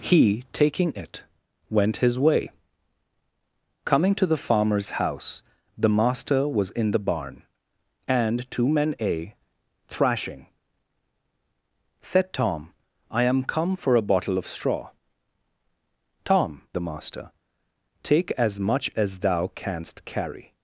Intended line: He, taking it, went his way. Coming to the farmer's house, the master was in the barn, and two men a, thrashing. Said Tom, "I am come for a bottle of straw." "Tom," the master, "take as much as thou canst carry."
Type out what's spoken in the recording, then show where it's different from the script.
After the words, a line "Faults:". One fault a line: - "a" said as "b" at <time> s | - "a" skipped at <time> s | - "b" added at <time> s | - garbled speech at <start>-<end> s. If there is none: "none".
He, taking it, went his way. Coming to the farmer's house, the master was in the barn, and two men a, thrashing. Said Tom, "I am come for a bottle of straw." "Tom," the master, "take as much as thou canst carry."
Faults:
none